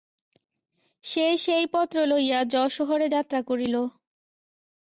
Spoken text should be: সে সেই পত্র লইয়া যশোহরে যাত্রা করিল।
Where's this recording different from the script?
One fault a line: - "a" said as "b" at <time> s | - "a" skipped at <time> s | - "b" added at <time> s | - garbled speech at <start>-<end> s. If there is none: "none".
none